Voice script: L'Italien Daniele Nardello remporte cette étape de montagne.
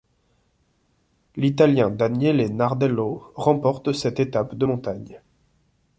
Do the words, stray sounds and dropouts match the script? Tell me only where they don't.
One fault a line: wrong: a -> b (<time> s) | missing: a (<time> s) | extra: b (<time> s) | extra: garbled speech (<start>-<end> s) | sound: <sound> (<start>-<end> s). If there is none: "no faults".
no faults